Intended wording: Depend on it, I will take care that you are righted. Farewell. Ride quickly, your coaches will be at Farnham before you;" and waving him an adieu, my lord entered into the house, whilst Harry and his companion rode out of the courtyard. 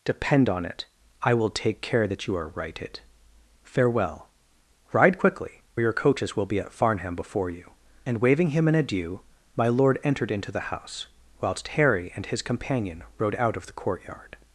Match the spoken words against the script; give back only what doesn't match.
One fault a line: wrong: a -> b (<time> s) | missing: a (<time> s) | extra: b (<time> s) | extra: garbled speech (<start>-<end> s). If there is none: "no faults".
no faults